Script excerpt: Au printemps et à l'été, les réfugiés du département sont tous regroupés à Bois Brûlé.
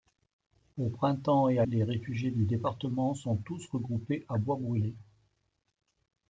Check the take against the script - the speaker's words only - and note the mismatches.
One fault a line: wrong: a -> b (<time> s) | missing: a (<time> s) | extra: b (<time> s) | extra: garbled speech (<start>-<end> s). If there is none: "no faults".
missing: l'été (1.6 s)